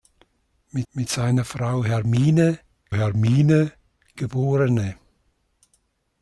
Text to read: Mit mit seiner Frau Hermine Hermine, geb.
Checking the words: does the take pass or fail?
pass